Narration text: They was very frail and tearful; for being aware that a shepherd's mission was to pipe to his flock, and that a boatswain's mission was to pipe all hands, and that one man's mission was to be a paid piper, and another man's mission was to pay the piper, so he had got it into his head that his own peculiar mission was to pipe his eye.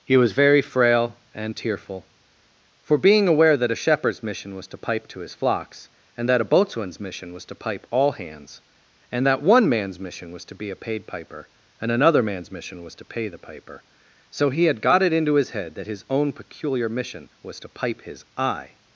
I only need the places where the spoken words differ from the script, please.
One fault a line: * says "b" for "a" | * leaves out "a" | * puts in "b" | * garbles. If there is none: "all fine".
* says "He" for "They"
* says "flocks" for "flock"